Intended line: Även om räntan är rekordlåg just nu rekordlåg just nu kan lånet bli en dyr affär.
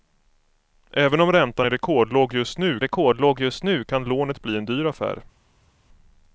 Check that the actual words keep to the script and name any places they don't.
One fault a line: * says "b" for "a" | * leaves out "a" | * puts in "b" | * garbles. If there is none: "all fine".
all fine